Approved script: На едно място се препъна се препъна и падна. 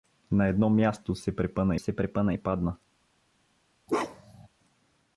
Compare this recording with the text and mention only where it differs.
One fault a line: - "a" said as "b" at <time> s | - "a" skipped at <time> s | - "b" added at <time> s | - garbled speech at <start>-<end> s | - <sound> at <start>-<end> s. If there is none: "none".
- bark at 3.9-4.5 s